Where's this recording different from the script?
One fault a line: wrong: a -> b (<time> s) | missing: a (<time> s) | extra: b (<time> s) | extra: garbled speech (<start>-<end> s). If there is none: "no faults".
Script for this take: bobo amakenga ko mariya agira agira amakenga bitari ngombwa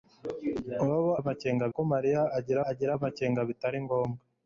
no faults